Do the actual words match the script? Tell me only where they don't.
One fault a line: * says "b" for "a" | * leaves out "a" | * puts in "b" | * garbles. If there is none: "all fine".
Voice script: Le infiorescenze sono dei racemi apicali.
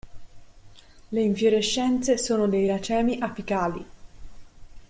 all fine